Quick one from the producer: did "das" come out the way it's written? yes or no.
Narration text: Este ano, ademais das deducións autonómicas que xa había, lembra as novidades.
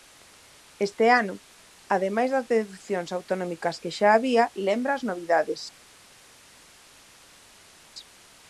yes